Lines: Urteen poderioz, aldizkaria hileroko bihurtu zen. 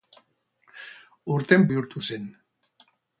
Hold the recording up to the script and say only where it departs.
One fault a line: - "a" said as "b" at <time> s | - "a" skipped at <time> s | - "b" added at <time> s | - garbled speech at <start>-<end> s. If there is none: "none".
- "poderioz aldizkaria hileroko" skipped at 1.7 s